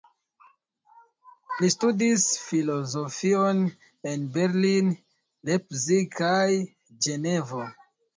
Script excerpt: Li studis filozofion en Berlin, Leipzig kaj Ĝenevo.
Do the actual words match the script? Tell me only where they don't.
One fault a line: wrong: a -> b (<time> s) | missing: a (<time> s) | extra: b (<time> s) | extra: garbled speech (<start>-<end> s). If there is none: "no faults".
no faults